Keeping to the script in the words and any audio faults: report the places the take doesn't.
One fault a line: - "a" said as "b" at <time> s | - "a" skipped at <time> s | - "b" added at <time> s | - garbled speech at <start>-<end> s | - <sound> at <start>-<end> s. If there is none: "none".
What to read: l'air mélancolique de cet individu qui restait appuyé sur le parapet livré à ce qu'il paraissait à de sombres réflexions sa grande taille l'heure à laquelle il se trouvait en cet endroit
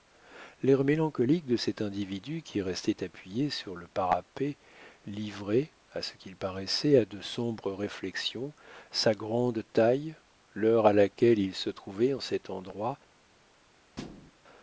- thud at 14.0-14.3 s